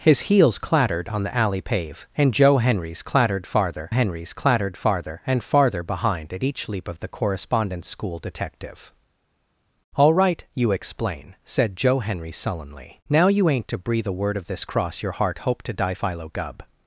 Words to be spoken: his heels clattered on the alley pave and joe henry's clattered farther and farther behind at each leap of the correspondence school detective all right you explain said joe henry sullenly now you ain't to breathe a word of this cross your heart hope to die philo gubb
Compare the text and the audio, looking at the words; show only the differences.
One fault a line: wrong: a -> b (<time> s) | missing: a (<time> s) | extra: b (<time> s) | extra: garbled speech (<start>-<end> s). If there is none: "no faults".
extra: henry's clattered farther (3.9 s)